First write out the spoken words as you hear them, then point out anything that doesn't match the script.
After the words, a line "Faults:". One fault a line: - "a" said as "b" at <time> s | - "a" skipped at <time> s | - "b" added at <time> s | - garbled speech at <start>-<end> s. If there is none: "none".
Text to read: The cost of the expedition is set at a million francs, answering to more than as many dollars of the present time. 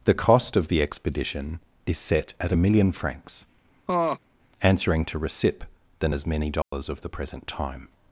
The cost of the expedition is set at a million francs, answering to recip than as many dollars of the present time.
Faults:
- "more" said as "recip" at 5.2 s